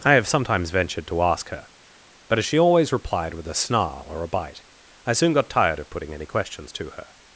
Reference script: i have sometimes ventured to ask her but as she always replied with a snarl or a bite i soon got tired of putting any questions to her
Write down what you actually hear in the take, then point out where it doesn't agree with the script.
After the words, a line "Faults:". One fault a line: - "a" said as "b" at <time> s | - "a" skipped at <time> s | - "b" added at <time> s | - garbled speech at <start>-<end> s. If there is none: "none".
i have sometimes ventured to ask her but as she always replied with a snarl or a bite i soon got tired of putting any questions to her
Faults:
none